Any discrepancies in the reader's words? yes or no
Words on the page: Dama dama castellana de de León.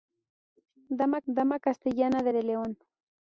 no